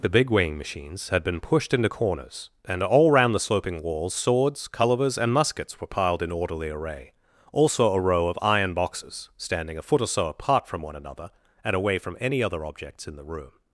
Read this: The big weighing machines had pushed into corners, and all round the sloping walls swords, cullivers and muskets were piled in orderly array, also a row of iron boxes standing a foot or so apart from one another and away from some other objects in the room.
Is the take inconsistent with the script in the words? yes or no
yes